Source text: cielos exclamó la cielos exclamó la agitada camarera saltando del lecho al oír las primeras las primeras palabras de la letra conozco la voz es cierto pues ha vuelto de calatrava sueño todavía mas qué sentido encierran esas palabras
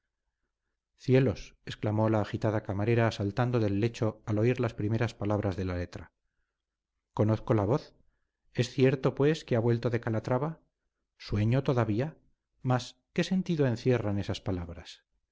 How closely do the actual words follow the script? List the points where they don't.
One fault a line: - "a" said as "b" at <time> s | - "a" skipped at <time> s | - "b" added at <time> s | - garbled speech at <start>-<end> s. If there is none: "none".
- "cielos exclamó la" skipped at 2.2 s
- "las primeras" skipped at 5.1 s
- "que" added at 9.4 s